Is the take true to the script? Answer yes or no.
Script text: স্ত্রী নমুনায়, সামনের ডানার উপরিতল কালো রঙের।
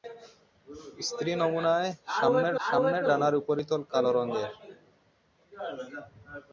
no